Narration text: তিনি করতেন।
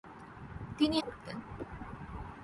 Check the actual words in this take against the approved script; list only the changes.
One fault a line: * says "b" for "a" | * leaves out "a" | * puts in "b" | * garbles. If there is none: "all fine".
all fine